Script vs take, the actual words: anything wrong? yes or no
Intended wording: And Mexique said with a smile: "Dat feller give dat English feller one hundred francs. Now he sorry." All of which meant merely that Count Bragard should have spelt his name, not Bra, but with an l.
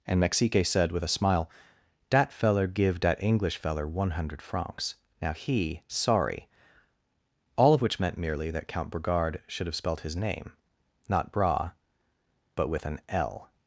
no